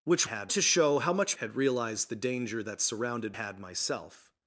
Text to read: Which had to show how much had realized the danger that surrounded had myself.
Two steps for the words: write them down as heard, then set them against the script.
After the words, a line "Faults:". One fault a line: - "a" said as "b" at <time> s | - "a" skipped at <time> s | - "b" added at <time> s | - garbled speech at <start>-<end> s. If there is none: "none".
Which had to show how much had realized the danger that surrounded had myself.
Faults:
none